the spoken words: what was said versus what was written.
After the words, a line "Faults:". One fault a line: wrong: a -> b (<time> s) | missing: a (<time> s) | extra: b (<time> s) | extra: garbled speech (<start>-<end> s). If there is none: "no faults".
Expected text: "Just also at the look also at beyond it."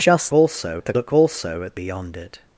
"Just also at the look also at beyond it."
Faults:
no faults